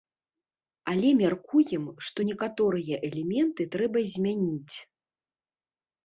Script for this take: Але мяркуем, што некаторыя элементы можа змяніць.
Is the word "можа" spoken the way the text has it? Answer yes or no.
no